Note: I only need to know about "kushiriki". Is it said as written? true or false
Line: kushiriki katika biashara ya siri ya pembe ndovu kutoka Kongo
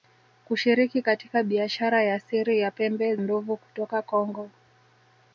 true